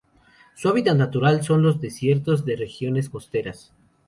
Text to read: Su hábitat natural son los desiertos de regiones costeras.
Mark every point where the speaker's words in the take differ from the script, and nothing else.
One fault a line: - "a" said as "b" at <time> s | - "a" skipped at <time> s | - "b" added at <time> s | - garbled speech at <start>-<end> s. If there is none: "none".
none